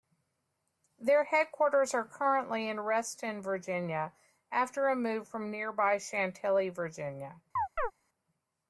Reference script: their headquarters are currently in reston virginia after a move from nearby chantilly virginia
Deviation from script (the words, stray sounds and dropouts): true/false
true